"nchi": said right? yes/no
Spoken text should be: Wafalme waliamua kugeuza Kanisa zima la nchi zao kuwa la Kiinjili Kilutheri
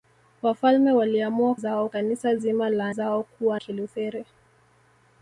no